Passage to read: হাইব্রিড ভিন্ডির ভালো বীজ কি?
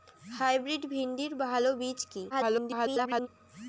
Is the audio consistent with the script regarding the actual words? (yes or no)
no